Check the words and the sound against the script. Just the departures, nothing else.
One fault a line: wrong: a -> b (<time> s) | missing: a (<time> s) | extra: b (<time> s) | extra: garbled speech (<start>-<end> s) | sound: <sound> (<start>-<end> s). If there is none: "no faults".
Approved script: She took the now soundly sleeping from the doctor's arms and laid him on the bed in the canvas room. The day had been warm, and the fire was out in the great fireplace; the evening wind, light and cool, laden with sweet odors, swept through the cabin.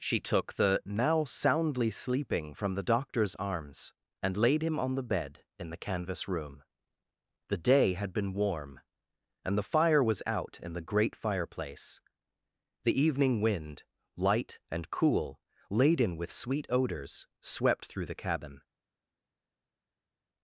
no faults